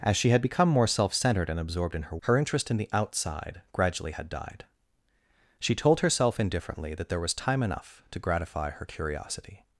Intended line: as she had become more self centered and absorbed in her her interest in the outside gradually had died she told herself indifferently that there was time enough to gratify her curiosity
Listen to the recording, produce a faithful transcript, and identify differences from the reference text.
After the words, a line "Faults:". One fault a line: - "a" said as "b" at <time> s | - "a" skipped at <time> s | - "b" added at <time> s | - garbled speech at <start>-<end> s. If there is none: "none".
as she had become more self centered and absorbed in her her interest in the outside gradually had died she told herself indifferently that there was time enough to gratify her curiosity
Faults:
none